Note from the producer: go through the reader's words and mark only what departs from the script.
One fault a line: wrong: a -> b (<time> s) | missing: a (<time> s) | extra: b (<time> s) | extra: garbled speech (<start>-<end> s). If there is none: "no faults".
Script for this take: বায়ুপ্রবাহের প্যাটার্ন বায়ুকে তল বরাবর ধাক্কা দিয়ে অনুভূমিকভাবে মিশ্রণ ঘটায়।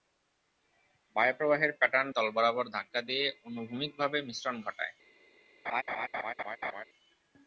missing: বায়ুকে (2.1 s)